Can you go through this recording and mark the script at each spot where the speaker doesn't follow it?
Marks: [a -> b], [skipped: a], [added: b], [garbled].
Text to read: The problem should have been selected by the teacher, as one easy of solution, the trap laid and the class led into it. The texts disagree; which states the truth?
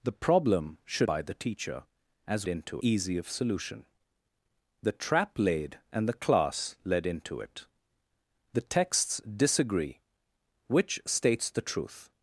The problem should [skipped: have been selected] by the teacher, as [one -> into] easy of solution, the trap laid and the class led into it. The texts disagree; which states the truth?